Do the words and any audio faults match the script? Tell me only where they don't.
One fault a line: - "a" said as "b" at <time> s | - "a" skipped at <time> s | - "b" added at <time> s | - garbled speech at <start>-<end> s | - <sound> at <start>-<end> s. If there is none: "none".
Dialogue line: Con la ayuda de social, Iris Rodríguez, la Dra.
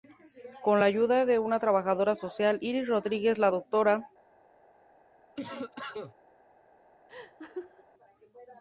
- "una trabajadora" added at 1.4 s
- cough at 5.3-6.1 s
- laugh at 7.1-7.8 s